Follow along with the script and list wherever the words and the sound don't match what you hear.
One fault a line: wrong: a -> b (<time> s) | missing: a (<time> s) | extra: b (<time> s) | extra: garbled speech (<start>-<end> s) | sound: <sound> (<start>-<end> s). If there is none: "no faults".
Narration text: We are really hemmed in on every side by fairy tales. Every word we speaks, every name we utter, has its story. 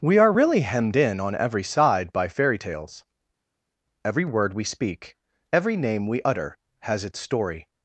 wrong: speaks -> speak (4.6 s)